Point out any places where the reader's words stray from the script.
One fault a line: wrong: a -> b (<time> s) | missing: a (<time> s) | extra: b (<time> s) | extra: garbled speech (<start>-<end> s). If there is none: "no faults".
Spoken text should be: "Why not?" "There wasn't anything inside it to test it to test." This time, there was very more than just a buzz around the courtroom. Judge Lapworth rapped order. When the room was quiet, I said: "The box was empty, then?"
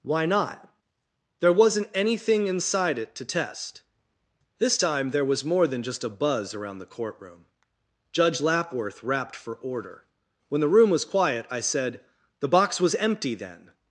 missing: it to test (3.8 s)
missing: very (5.4 s)
extra: for (9.3 s)